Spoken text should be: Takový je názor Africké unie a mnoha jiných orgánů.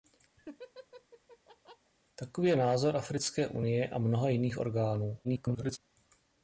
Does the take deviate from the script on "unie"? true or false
false